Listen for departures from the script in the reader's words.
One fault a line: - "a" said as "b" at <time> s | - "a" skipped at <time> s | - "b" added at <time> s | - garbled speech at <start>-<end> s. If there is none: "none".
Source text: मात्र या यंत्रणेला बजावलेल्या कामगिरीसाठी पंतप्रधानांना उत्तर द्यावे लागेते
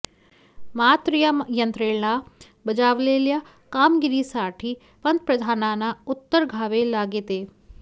none